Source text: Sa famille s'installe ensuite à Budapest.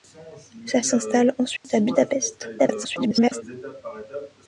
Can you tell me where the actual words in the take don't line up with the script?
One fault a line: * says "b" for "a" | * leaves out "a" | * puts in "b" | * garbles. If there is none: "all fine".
* leaves out "famille"
* garbles